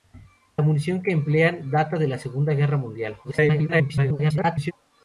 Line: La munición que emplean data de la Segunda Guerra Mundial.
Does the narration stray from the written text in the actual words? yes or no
yes